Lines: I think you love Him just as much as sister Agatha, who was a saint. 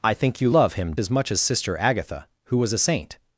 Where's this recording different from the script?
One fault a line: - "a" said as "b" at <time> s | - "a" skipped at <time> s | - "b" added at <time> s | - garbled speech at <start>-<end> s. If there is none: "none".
- "just" skipped at 0.9 s